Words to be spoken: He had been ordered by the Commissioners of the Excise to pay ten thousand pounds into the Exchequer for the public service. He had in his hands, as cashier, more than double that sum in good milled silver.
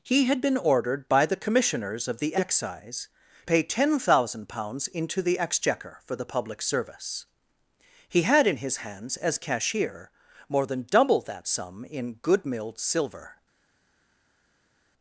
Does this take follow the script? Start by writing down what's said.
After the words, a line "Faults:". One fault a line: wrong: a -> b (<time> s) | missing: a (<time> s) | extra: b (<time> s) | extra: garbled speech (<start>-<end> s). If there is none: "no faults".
He had been ordered by the Commissioners of the Excise pay ten thousand pounds into the Exchequer for the public service. He had in his hands, as cashier, more than double that sum in good milled silver.
Faults:
missing: to (3.1 s)